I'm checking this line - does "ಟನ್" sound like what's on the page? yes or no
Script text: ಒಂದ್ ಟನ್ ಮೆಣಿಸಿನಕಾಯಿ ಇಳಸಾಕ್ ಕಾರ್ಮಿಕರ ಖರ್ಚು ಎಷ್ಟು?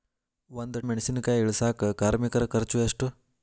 no